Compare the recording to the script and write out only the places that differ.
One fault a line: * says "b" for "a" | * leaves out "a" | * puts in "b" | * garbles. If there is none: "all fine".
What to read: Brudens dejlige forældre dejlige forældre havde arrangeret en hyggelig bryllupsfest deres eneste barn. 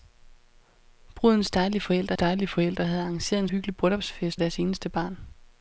all fine